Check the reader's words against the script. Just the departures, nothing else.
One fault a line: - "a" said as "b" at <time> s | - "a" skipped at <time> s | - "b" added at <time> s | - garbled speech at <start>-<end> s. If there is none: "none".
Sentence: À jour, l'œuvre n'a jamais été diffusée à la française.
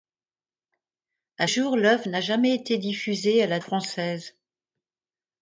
none